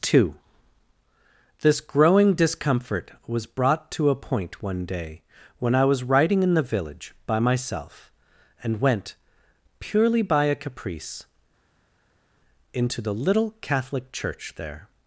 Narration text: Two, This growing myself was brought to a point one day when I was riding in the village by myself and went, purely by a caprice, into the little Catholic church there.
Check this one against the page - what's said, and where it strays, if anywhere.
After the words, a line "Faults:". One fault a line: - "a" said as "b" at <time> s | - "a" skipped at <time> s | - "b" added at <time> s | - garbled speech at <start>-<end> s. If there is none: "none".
Two, This growing discomfort was brought to a point one day when I was riding in the village by myself and went, purely by a caprice, into the little Catholic church there.
Faults:
- "myself" said as "discomfort" at 2.3 s